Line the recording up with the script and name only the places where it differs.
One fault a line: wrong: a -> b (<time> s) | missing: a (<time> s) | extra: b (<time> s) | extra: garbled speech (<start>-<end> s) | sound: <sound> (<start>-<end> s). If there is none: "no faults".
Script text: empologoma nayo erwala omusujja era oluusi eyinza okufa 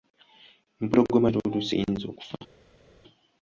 missing: nayo erwala omusujja (1.3 s)